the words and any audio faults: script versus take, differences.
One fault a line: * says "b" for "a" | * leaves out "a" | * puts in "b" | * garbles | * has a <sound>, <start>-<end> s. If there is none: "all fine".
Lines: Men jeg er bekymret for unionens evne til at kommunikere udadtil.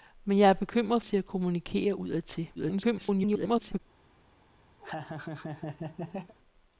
* leaves out "for unionens evne"
* garbles
* has a laugh, 4.8-6.3 s